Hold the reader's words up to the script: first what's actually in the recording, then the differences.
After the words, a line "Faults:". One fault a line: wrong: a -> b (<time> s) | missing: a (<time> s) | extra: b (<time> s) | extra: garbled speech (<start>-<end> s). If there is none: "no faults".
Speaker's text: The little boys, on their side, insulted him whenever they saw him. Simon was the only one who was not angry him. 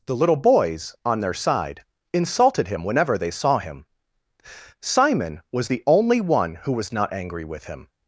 The little boys, on their side, insulted him whenever they saw him. Simon was the only one who was not angry with him.
Faults:
extra: with (7.4 s)